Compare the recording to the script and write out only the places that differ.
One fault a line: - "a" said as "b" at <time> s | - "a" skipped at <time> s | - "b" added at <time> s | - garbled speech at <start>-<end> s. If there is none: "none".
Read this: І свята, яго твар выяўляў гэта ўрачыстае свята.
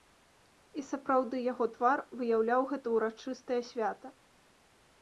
- "свята" said as "сапраўды" at 0.9 s